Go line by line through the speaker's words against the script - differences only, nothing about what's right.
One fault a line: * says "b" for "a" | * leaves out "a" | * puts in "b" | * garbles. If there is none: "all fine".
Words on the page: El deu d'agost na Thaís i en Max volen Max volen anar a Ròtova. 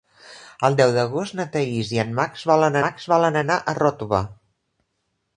all fine